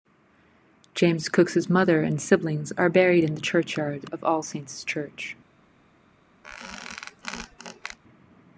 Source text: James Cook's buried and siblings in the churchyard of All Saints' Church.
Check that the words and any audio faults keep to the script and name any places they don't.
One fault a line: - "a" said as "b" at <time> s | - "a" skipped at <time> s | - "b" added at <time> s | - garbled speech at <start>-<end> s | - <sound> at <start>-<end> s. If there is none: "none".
- "buried" said as "mother" at 1.7 s
- "are buried" added at 2.8 s
- squeak at 6.4-8.0 s